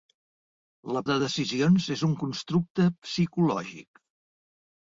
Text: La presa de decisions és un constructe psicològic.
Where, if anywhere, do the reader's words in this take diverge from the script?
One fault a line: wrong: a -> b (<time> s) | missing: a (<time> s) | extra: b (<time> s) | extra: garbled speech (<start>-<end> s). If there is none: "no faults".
missing: presa (1.0 s)